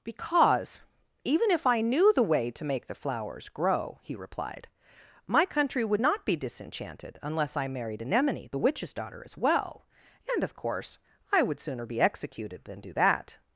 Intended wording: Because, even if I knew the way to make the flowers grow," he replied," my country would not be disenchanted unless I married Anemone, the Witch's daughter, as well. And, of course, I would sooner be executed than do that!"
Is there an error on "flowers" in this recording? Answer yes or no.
no